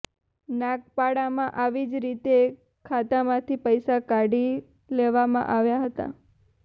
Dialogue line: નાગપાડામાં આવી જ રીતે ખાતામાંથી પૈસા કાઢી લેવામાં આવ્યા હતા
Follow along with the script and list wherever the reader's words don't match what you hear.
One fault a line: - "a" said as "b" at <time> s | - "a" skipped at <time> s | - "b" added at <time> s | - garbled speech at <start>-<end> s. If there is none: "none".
none